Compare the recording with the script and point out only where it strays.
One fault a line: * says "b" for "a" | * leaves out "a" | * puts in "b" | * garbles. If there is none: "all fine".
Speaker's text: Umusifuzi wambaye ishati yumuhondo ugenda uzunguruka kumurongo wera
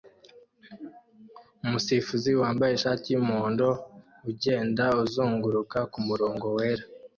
all fine